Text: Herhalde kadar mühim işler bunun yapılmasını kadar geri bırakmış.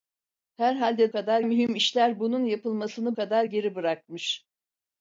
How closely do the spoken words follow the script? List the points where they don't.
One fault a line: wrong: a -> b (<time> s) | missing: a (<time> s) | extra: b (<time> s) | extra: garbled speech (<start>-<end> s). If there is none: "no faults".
no faults